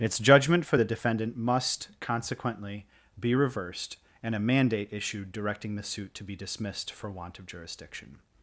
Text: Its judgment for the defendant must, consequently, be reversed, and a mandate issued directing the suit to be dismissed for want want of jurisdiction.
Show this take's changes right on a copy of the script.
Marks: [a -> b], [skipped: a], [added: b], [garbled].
Its judgment for the defendant must, consequently, be reversed, and a mandate issued directing the suit to be dismissed for want [skipped: want] of jurisdiction.